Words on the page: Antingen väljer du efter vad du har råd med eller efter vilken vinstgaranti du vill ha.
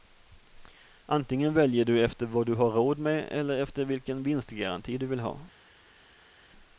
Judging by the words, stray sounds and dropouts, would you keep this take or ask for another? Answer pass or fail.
pass